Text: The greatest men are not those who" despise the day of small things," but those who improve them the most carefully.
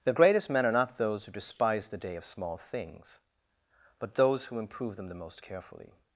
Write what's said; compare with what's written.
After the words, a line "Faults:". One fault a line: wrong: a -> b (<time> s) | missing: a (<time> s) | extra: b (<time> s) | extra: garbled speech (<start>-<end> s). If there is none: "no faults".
The greatest men are not those who" despise the day of small things," but those who improve them the most carefully.
Faults:
no faults